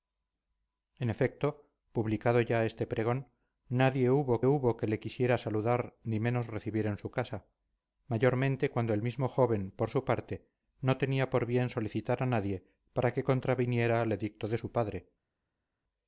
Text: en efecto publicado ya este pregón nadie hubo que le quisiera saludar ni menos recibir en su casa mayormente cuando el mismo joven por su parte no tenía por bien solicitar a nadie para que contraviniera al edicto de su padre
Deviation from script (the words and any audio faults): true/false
true